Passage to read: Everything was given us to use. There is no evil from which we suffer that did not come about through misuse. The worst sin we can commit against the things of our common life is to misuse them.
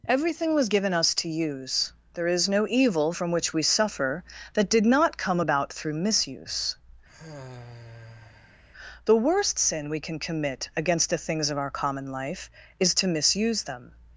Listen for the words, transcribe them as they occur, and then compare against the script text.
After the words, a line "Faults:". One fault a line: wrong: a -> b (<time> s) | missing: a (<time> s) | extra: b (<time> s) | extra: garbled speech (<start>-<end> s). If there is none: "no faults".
Everything was given us to use. There is no evil from which we suffer that did not come about through misuse. The worst sin we can commit against the things of our common life is to misuse them.
Faults:
no faults